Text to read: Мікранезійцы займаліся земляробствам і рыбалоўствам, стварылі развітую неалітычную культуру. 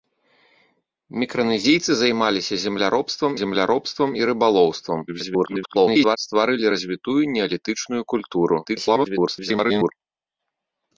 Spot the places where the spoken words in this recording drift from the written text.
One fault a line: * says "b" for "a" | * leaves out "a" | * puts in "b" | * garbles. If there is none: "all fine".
* puts in "земляробствам"
* garbles
* garbles